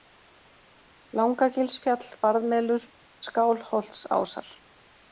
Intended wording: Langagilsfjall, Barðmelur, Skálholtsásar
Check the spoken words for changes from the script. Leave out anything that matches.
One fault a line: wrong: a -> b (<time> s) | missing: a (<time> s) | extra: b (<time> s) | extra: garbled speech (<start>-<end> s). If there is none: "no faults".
no faults